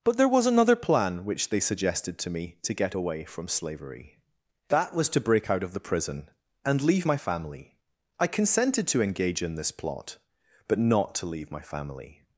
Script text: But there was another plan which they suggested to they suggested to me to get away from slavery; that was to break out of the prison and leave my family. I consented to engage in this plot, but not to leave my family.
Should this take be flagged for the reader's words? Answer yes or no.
yes